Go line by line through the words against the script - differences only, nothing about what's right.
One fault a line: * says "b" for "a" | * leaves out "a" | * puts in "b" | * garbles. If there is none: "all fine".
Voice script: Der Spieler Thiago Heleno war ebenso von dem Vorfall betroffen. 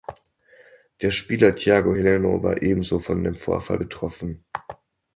all fine